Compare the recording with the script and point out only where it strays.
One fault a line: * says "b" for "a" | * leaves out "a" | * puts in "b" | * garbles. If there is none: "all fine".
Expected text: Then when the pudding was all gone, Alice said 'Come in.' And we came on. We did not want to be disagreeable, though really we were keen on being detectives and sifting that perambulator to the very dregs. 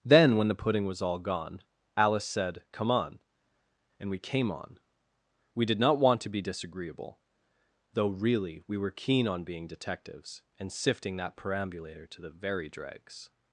* says "on" for "in"